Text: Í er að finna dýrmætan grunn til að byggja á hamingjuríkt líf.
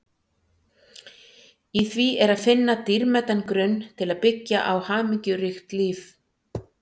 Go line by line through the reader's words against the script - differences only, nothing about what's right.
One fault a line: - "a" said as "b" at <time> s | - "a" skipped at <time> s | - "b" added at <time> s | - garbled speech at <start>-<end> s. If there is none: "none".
- "því" added at 1.9 s